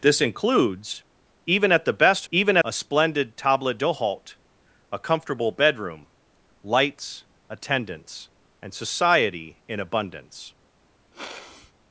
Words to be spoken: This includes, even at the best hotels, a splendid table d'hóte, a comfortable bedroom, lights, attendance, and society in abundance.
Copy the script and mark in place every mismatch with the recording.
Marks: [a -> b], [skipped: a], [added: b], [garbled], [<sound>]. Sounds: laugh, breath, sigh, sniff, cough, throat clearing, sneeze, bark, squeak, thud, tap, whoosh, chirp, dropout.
This includes, even at the best [hotels, -> even] a splendid table d'hóte, a comfortable bedroom, lights, attendance, and society in abundance. [sniff]